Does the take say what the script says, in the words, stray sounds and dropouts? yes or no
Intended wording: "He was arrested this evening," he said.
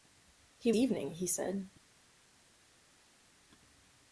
no